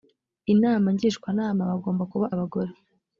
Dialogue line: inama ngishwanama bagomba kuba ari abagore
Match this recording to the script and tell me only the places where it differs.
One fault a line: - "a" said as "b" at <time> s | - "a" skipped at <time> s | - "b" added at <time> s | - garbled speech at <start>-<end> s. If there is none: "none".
- "ari" skipped at 2.3 s